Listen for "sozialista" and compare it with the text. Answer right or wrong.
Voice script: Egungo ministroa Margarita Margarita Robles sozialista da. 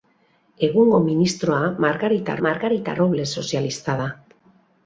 right